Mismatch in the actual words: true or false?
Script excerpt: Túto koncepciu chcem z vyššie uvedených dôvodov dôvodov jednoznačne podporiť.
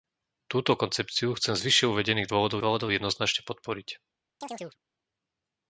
false